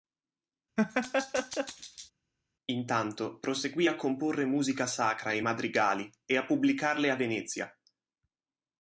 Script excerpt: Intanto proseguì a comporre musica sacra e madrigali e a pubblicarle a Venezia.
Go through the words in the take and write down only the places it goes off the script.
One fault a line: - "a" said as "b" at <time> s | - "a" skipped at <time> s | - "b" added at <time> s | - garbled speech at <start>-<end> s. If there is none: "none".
none